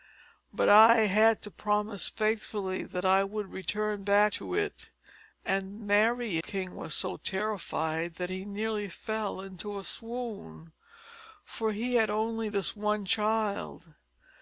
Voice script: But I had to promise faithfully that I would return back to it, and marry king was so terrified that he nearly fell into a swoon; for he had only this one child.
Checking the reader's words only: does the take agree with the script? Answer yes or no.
yes